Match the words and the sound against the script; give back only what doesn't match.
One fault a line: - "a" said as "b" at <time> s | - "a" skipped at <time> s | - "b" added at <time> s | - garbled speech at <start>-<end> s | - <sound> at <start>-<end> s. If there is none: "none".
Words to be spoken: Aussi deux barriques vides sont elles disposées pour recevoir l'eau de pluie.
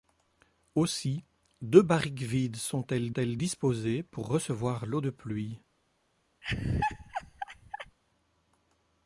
- "elles" added at 3.1 s
- laugh at 6.4-8.0 s